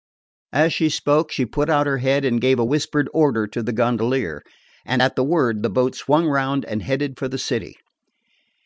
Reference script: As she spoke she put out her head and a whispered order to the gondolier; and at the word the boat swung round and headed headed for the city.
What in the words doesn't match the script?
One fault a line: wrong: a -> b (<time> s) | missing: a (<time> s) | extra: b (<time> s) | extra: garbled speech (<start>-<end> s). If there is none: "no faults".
extra: gave (2.4 s)
missing: headed (7.2 s)